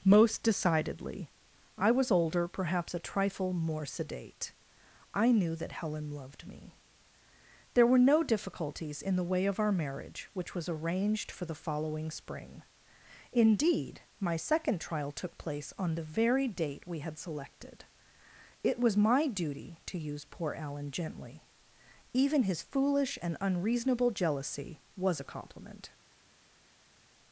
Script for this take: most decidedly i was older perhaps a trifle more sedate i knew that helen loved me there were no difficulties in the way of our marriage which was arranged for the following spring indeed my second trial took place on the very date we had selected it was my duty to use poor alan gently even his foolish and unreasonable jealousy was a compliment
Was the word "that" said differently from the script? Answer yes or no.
no